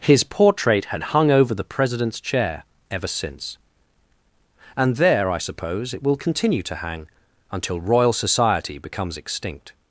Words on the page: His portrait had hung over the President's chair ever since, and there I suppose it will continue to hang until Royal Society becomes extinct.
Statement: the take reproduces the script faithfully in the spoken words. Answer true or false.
true